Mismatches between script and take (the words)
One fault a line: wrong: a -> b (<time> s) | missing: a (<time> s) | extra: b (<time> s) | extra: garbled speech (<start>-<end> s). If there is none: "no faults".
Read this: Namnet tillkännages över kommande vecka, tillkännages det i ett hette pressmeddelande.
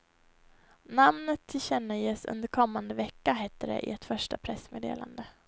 wrong: över -> under (2.2 s)
wrong: tillkännages -> hette (3.3 s)
wrong: hette -> första (4.0 s)